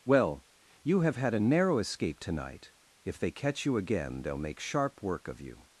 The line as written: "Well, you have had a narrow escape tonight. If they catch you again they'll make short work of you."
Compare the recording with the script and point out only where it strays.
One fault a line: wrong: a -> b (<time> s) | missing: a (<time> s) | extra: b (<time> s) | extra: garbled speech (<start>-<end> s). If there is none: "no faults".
wrong: short -> sharp (4.6 s)